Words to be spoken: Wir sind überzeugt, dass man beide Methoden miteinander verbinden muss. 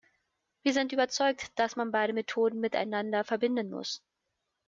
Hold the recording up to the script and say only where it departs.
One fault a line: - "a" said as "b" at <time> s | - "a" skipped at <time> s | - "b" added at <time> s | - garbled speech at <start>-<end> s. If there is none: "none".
none